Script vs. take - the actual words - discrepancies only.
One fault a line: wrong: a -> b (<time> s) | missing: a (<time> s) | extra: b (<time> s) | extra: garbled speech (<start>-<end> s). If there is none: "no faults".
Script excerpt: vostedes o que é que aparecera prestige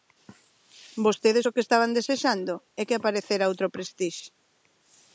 extra: estaban desexando (1.6 s)
extra: outro (3.5 s)